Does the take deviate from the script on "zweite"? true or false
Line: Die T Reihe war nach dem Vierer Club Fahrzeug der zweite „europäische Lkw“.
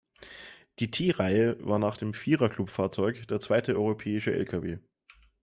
false